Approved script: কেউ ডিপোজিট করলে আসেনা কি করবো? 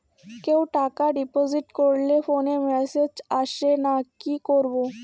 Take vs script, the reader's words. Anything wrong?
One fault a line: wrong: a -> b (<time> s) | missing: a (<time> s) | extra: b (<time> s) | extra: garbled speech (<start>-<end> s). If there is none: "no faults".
extra: টাকা (0.7 s)
extra: ফোনে মেসেজ (2.3 s)